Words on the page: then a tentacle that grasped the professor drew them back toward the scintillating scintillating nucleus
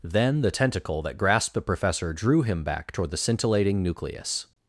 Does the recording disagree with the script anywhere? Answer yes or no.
yes